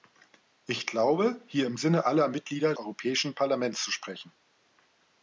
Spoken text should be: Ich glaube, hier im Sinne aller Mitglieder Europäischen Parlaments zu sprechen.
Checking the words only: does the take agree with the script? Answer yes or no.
yes